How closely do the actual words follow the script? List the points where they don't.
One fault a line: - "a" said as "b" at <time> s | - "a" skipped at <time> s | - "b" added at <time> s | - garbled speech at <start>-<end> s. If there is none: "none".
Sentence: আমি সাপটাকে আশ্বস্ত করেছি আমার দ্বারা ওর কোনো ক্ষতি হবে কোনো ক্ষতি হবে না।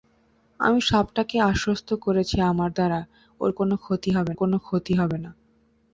none